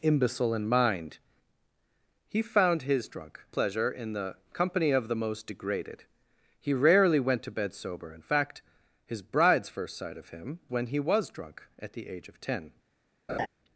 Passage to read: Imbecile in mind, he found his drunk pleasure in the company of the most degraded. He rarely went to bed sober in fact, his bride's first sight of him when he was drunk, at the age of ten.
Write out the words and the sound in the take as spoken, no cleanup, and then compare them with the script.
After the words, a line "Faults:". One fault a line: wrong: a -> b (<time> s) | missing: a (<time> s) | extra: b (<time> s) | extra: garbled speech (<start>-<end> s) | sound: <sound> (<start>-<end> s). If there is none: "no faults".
Imbecile in mind, he found his drunk pleasure in the company of the most degraded. He rarely went to bed sober in fact, his bride's first sight of him when he was drunk, at the age of ten.
Faults:
sound: laugh (13.3-13.5 s)